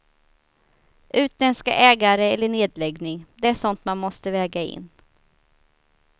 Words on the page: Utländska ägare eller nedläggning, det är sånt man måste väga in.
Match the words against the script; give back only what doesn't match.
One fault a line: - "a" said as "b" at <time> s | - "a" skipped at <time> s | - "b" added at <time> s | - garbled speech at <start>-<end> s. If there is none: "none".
none